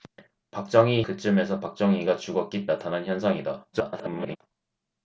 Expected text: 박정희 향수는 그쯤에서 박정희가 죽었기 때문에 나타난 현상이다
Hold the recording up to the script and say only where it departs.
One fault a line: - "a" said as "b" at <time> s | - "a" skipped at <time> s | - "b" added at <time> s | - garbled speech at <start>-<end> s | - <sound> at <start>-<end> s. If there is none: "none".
- "향수는" skipped at 1.0 s
- "때문에" skipped at 2.7 s
- garbled speech at 3.7-4.4 s